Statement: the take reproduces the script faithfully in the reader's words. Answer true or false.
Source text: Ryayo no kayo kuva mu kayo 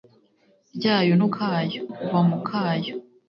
true